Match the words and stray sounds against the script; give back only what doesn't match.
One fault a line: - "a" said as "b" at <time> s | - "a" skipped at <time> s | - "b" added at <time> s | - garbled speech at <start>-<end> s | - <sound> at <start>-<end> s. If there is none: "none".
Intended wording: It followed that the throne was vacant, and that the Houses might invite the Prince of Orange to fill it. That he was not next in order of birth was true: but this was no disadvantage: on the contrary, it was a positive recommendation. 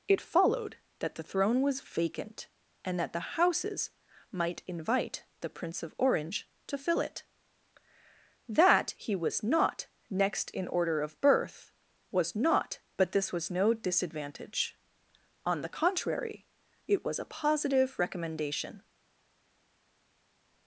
- "true" said as "not" at 12.3 s